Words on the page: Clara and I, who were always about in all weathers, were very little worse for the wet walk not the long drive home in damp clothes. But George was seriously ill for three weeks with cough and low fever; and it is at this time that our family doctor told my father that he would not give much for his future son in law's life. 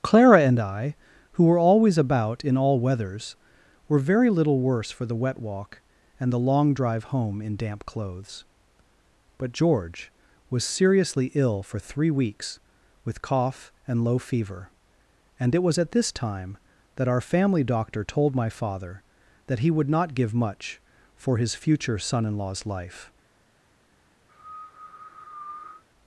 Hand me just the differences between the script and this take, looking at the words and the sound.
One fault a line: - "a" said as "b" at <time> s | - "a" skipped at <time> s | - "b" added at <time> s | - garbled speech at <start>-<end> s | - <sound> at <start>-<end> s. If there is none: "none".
- "not" said as "and" at 6.2 s
- "is" said as "was" at 15.6 s
- cough at 24.3-25.8 s